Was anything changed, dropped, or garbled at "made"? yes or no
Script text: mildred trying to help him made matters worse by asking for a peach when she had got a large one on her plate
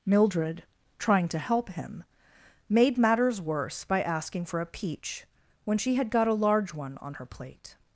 no